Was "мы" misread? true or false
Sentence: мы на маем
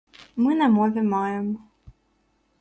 false